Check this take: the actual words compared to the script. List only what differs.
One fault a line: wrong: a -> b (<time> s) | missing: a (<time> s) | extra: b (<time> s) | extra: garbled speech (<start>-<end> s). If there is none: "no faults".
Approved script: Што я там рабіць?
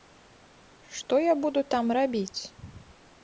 extra: буду (1.4 s)